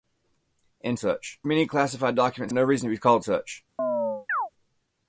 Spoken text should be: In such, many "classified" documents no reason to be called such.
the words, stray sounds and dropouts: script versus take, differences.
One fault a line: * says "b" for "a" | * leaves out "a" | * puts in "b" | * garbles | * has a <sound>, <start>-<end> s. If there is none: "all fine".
* has a chirp, 3.8-4.5 s